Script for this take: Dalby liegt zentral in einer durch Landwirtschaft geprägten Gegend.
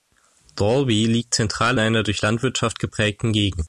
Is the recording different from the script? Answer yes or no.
yes